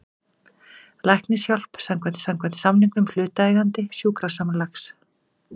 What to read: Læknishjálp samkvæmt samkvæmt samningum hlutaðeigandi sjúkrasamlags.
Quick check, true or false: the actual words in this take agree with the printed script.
true